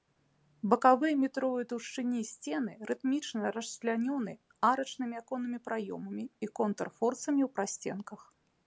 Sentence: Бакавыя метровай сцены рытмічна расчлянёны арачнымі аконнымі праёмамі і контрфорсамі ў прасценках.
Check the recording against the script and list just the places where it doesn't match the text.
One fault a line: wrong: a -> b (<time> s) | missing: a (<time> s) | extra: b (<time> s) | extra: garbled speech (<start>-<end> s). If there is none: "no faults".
extra: таўшчыні (1.7 s)